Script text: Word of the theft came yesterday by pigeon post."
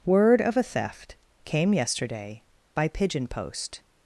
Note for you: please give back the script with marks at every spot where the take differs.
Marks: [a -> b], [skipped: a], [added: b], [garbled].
Word of [the -> a] theft came yesterday by pigeon post."